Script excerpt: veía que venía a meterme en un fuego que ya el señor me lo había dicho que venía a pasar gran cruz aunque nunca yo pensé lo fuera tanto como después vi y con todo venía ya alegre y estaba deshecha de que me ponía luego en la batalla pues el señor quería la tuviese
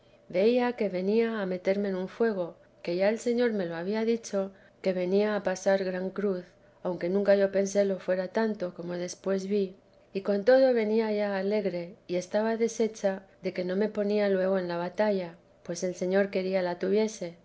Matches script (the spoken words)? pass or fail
fail